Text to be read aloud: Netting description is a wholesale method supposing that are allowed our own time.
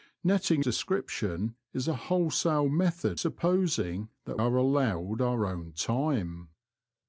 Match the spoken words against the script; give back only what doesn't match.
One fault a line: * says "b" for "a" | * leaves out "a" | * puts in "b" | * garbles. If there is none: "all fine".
all fine